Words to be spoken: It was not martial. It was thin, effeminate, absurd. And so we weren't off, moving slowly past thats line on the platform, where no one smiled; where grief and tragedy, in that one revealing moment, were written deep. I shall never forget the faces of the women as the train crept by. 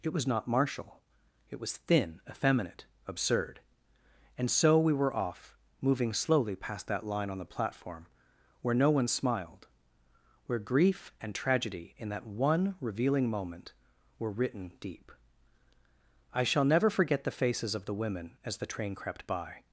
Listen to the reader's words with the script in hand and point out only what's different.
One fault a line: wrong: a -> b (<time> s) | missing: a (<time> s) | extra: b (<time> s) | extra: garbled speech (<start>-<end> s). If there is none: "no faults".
wrong: weren't -> were (4.9 s)
wrong: thats -> that (6.9 s)